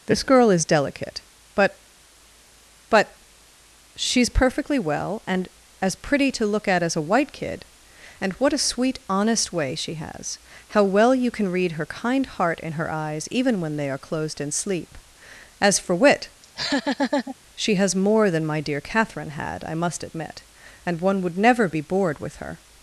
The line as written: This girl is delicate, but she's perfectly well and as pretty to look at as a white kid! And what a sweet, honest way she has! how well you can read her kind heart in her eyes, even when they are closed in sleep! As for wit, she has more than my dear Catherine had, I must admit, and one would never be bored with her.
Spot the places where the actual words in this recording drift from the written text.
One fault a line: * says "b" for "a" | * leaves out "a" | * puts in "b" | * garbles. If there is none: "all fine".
* puts in "but"